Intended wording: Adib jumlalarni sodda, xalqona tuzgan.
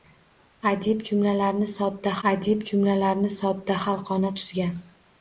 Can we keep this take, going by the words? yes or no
no